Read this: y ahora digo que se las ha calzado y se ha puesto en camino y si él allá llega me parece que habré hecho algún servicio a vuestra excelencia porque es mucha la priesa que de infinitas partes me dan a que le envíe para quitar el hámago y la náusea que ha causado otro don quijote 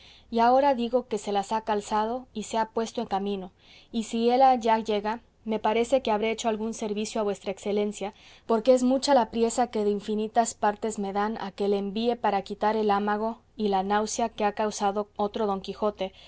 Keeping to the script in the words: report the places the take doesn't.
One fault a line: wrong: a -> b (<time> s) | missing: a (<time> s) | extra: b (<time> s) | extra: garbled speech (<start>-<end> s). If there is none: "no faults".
no faults